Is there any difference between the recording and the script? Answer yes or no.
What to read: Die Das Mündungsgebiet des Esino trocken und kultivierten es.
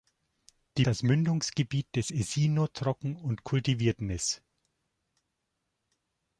no